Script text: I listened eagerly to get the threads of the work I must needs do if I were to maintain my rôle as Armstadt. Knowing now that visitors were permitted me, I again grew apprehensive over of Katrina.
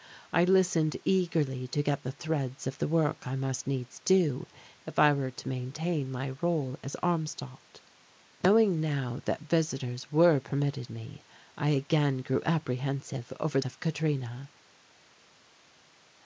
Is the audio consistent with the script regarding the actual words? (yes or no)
yes